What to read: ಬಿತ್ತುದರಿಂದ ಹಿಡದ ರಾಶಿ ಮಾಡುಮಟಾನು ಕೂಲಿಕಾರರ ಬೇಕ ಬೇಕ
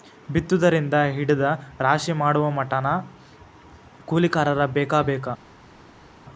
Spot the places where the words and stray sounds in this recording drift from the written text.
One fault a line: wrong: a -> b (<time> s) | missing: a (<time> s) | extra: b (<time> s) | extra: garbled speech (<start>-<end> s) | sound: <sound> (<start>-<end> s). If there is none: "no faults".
no faults